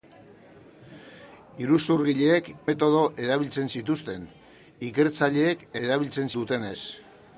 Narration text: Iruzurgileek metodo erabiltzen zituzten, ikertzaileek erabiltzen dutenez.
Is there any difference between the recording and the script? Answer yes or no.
no